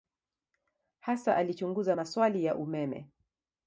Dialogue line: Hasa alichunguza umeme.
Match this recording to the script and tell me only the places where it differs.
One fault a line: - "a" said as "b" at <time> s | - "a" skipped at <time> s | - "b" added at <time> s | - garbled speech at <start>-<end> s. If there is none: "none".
- "maswali ya" added at 1.9 s